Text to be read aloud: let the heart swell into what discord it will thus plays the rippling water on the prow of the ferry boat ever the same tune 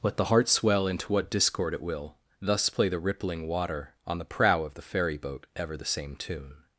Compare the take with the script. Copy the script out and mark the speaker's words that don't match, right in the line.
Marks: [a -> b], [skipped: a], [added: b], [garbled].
let the heart swell into what discord it will thus [plays -> play] the rippling water on the prow of the ferry boat ever the same tune